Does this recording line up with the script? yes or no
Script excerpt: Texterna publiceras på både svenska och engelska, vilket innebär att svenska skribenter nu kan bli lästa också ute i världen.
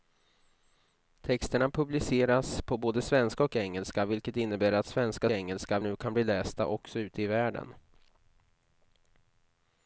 no